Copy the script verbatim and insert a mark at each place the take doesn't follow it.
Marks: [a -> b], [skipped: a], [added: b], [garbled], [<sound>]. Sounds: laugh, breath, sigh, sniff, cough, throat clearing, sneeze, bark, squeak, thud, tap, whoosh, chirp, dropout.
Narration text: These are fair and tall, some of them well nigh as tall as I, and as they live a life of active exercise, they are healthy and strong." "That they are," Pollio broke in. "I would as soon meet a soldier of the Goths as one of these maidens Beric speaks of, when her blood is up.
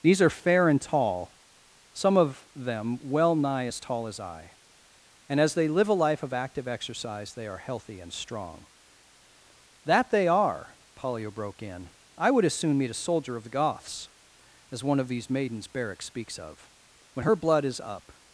These are fair and tall, some of them well nigh as tall as I, and as they live a life of active exercise, they are healthy and strong." "That they are," Pollio broke in. "I would as soon meet a soldier of the Goths as one of these maidens Beric speaks of, when her blood is up.